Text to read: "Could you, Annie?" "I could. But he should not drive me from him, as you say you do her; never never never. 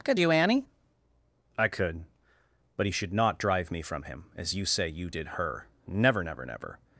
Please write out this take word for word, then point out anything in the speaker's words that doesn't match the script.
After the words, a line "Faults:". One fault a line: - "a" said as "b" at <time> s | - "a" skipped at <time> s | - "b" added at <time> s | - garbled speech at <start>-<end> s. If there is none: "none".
"Could you, Annie?" "I could. But he should not drive me from him, as you say you did her; never never never.
Faults:
- "do" said as "did" at 5.1 s